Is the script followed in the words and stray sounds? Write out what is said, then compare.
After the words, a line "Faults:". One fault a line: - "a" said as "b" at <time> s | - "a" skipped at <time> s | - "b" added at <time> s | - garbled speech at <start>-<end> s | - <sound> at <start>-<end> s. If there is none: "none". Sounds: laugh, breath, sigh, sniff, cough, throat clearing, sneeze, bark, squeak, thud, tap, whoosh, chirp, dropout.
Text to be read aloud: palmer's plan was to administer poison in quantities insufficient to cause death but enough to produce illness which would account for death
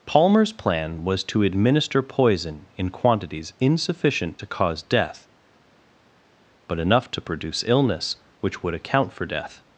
palmer's plan was to administer poison in quantities insufficient to cause death but enough to produce illness which would account for death
Faults:
none